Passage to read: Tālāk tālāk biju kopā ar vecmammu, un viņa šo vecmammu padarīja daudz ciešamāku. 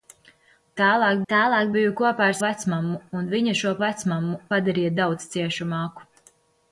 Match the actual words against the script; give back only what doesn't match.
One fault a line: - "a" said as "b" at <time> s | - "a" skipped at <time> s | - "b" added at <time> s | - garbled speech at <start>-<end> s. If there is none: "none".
none